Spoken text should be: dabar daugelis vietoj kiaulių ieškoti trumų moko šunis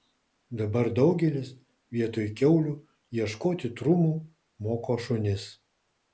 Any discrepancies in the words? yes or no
no